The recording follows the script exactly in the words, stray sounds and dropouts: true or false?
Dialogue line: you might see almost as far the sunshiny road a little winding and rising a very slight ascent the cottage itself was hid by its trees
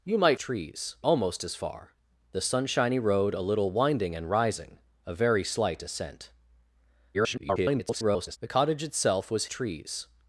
false